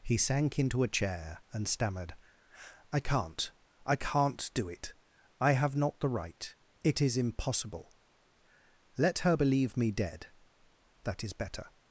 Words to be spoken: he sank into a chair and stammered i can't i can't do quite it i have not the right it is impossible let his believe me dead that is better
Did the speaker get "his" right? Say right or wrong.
wrong